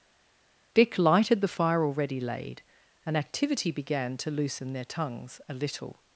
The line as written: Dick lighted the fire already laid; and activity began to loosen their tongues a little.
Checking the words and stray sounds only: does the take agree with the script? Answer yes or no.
yes